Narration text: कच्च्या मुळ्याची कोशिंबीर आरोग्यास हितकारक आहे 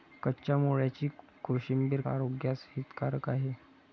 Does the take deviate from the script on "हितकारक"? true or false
false